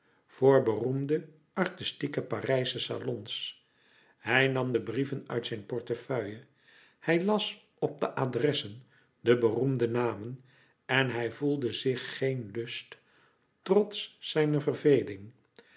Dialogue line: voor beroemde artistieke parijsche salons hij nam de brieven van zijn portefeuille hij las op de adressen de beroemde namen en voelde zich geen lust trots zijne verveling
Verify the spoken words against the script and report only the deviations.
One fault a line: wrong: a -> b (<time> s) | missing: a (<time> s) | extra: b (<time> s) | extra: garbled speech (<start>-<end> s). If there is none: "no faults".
wrong: van -> uit (5.3 s)
extra: hij (11.1 s)